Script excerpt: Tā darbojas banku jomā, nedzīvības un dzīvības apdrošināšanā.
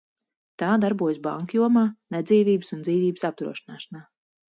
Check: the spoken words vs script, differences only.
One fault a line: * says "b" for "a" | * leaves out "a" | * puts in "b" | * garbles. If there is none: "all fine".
all fine